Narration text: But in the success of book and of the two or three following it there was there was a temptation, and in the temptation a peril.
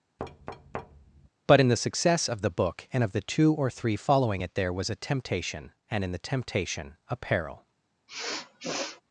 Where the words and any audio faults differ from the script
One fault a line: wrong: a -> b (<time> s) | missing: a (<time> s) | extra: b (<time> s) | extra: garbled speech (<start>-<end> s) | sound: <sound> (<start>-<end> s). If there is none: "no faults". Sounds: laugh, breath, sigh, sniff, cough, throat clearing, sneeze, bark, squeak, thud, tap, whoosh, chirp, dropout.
sound: thud (0.2-1.3 s)
extra: the (2.4 s)
missing: there was (4.9 s)
sound: sniff (8.1-9.0 s)